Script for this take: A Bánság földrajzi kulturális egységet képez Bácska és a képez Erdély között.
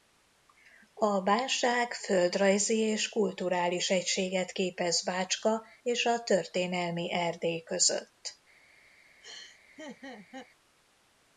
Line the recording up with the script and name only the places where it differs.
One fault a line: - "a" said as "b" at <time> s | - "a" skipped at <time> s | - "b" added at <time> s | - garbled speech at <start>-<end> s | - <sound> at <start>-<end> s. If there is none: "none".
- "és" added at 2.8 s
- "képez" said as "történelmi" at 6.2 s
- laugh at 9.2-10.5 s